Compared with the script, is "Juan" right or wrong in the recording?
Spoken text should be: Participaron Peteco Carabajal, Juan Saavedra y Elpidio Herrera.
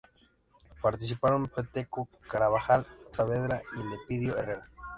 wrong